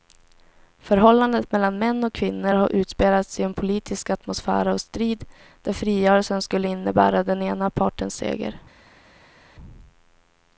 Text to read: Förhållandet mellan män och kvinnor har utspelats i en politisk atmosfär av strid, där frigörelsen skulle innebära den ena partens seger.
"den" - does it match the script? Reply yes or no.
yes